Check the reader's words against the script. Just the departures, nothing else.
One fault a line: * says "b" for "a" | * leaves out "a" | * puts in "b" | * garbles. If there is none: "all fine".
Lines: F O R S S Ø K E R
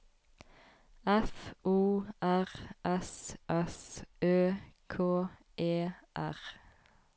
all fine